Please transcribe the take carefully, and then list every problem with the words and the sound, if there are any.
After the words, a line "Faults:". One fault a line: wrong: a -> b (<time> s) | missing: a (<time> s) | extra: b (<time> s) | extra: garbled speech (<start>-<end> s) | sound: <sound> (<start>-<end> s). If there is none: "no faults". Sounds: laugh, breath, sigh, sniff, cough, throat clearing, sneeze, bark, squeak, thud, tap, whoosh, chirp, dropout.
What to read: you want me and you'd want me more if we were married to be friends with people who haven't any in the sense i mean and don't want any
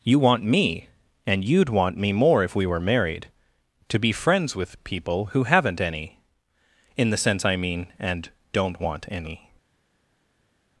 you want me and you'd want me more if we were married to be friends with people who haven't any in the sense i mean and don't want any
Faults:
no faults